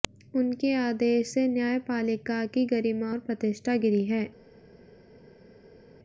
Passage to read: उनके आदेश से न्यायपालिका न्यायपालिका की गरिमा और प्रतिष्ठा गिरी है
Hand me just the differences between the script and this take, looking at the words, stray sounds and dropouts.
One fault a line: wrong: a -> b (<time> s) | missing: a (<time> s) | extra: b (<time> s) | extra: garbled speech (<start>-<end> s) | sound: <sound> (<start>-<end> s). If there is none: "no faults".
missing: न्यायपालिका (2.4 s)